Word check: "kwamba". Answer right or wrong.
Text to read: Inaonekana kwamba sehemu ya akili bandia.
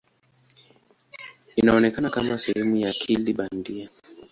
wrong